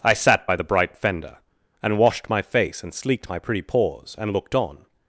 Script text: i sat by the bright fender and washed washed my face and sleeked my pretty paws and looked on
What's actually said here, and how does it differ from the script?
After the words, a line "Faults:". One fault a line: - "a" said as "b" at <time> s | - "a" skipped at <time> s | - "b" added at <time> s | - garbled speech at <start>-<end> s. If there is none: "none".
i sat by the bright fender and washed my face and sleeked my pretty paws and looked on
Faults:
- "washed" skipped at 2.3 s